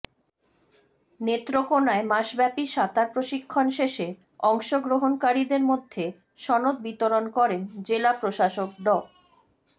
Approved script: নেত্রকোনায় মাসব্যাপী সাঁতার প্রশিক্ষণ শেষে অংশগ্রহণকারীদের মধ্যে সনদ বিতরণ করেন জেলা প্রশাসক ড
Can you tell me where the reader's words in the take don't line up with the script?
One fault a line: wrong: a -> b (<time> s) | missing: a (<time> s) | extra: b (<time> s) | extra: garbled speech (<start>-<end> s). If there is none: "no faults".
no faults